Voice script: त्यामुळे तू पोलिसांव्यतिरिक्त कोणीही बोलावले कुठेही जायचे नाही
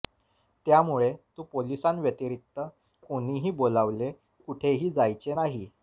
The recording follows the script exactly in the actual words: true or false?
true